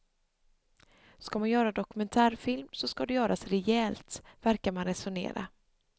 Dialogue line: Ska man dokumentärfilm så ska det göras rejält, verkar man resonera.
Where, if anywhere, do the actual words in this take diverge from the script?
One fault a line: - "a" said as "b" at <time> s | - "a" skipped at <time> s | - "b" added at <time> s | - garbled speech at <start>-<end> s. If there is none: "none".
- "göra" added at 1.5 s